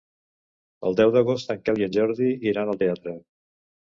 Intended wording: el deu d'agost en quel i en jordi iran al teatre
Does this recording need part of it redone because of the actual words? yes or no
no